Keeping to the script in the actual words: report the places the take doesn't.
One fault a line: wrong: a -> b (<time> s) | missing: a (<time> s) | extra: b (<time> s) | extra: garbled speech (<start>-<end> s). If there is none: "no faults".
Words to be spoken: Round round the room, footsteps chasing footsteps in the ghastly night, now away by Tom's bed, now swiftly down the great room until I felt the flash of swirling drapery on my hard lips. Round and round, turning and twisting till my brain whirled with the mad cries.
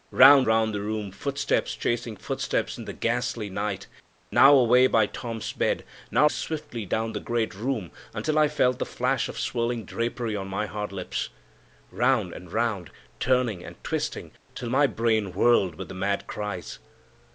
no faults